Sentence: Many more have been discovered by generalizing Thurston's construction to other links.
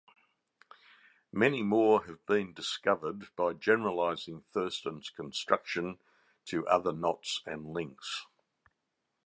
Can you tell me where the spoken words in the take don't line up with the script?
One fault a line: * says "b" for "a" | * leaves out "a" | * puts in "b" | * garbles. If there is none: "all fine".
* puts in "knots and"